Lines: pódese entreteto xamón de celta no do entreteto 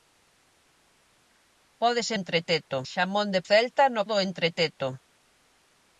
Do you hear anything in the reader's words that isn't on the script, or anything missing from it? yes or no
no